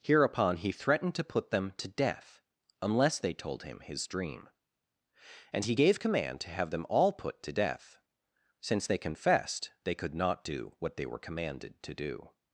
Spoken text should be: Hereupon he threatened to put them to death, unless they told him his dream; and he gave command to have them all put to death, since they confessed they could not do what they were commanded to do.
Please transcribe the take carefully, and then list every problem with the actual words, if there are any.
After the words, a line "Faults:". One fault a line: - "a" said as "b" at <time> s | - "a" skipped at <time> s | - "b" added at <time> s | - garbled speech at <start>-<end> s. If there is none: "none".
Hereupon he threatened to put them to death, unless they told him his dream; and he gave command to have them all put to death, since they confessed they could not do what they were commanded to do.
Faults:
none